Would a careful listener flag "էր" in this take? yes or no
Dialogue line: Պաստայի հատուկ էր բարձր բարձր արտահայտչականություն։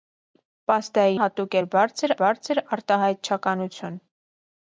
no